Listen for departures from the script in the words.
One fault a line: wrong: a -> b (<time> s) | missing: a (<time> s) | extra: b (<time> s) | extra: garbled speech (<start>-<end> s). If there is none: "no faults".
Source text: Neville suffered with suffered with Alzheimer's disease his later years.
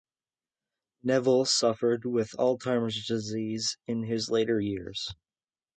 missing: suffered with (2.3 s)
extra: in (3.9 s)